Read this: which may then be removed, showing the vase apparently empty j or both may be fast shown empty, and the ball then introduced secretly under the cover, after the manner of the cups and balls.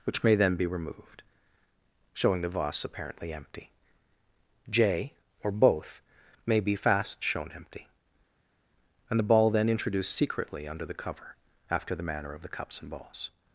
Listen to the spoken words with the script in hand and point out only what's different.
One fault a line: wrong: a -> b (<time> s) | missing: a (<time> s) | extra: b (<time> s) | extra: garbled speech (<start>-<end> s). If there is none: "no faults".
no faults